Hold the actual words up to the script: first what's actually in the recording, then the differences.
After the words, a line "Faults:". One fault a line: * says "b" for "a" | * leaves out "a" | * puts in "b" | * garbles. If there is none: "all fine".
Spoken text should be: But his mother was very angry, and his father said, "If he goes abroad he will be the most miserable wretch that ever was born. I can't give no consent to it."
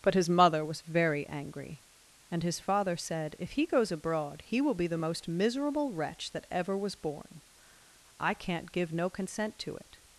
But his mother was very angry, and his father said, "If he goes abroad he will be the most miserable wretch that ever was born. I can't give no consent to it."
Faults:
all fine